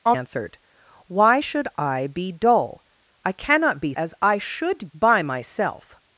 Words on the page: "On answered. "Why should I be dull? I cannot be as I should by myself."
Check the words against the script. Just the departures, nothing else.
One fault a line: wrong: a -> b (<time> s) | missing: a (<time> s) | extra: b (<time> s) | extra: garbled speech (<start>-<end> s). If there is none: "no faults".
no faults